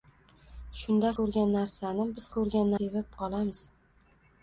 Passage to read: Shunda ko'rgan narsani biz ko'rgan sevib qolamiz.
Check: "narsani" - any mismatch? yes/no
no